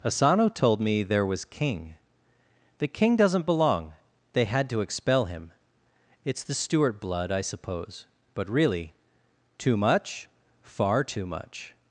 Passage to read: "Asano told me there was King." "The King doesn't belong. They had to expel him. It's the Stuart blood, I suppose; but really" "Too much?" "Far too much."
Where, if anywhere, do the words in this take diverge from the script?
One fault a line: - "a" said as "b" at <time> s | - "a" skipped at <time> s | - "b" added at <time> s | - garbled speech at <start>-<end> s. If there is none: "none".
none